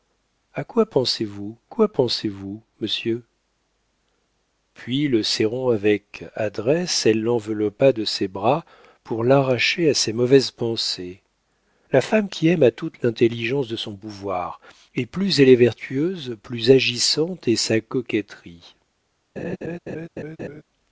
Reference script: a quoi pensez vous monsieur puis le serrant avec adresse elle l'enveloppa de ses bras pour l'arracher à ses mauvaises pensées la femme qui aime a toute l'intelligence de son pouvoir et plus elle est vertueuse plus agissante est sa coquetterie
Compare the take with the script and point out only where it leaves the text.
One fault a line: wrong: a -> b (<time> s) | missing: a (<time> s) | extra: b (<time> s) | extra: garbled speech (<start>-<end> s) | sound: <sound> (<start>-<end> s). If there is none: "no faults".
extra: quoi pensez vous (1.6 s)
sound: laugh (19.4-20.6 s)